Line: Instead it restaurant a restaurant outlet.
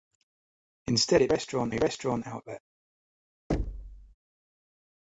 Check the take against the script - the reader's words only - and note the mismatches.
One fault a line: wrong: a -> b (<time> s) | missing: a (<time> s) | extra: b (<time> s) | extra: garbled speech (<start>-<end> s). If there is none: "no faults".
no faults